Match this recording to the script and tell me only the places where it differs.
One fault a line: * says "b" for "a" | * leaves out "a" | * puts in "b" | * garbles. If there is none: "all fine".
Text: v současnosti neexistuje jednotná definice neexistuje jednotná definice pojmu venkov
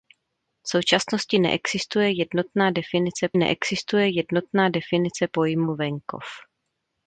all fine